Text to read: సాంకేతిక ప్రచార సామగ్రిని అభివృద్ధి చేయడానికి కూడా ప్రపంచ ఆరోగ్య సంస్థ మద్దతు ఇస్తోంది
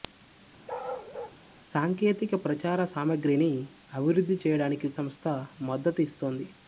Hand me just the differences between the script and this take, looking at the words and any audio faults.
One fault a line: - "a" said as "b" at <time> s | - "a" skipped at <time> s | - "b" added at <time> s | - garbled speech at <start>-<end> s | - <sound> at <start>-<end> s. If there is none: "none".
- bark at 0.7-1.4 s
- "కూడా ప్రపంచ ఆరోగ్య" skipped at 4.9 s